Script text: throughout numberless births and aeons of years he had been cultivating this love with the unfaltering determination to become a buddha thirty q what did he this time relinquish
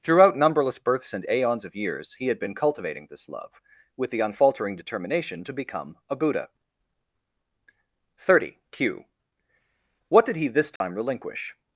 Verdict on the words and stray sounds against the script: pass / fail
fail